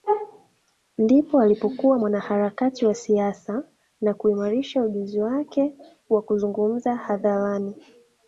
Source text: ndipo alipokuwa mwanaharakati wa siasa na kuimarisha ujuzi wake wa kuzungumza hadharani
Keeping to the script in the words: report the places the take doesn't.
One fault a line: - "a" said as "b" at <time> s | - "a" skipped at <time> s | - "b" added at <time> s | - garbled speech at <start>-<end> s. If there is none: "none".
none